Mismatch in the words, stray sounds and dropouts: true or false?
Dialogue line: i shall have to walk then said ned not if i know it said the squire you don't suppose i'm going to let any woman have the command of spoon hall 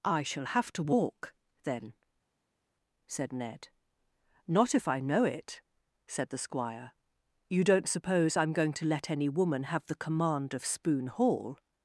false